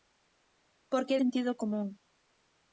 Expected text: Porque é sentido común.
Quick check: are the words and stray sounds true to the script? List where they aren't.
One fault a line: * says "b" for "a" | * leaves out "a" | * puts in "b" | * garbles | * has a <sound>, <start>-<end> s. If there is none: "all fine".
all fine